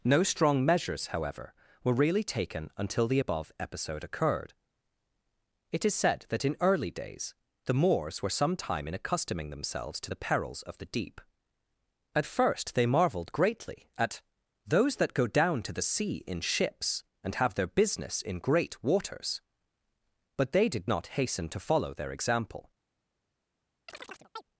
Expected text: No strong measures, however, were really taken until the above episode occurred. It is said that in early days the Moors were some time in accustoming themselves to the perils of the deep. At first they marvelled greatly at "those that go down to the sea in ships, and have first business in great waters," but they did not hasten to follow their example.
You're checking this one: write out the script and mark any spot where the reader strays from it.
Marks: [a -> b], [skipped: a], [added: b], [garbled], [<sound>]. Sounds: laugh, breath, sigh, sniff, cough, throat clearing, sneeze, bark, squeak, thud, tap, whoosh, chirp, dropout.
No strong measures, however, were really taken until the above episode occurred. It is said that in early days the Moors were some time in accustoming themselves to the perils of the deep. At first they marvelled greatly at "those that go down to the sea in ships, and have [first -> their] business in great waters," but they did not hasten to follow their example. [chirp]